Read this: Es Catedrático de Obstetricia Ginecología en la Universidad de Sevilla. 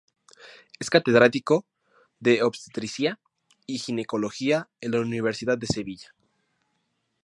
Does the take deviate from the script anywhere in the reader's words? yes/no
yes